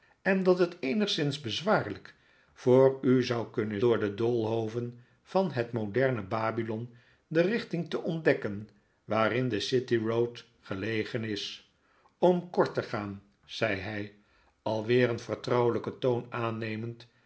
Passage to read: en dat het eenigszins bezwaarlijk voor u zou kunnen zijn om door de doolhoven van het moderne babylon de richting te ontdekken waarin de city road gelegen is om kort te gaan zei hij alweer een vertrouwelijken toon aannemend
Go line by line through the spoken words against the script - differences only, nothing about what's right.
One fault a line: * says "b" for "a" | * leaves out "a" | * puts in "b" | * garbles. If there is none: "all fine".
* leaves out "zijn om"